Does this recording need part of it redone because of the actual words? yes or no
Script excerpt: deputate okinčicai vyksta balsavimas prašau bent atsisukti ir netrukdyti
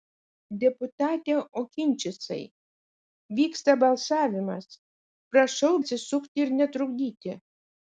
yes